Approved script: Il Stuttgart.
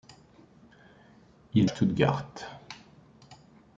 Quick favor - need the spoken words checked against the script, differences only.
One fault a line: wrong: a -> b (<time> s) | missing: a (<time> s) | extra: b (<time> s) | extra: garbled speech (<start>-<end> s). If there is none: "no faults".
no faults